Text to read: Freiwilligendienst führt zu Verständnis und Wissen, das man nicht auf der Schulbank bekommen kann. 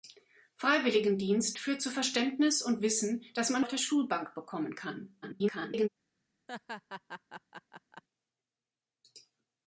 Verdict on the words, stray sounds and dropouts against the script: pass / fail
fail